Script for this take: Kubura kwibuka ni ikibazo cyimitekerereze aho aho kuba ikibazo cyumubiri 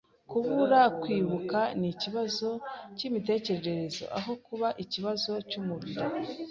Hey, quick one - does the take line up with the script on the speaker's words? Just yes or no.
no